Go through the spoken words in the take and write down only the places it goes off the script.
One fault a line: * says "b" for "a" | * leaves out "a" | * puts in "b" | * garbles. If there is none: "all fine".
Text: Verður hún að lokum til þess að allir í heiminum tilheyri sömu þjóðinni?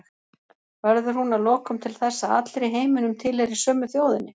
all fine